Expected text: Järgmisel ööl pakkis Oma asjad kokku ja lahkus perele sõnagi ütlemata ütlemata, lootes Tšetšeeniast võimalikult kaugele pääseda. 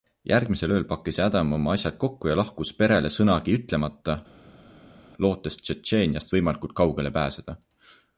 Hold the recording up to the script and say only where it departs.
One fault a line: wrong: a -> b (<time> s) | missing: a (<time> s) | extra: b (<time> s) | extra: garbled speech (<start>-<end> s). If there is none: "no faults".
extra: Adam (1.2 s)
missing: ütlemata (4.2 s)